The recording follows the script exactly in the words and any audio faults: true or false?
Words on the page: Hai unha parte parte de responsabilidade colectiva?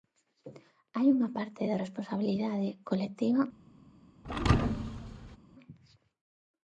false